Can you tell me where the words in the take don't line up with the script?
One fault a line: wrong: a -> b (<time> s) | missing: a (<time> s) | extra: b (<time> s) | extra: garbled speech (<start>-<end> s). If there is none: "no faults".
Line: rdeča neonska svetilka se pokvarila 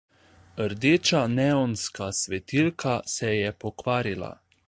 extra: je (3.4 s)